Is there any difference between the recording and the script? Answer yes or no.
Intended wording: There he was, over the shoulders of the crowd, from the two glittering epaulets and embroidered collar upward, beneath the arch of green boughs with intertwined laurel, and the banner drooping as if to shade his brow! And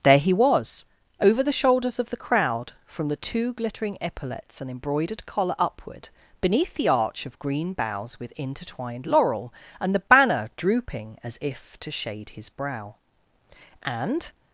no